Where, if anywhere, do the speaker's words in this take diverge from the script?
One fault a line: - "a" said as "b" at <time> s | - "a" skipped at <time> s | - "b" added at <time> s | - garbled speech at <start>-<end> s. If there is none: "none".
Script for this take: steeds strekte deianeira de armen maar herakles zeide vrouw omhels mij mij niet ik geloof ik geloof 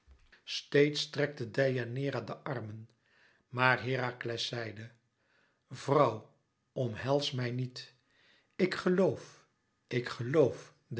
- "mij" skipped at 7.5 s